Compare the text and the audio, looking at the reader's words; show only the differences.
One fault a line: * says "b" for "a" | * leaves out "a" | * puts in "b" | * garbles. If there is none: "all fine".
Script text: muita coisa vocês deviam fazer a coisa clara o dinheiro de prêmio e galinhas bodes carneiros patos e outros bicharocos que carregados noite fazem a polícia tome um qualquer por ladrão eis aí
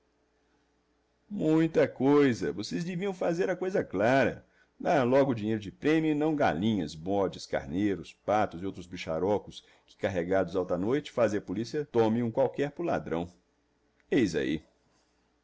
* puts in "dar logo"
* puts in "não"
* puts in "alta"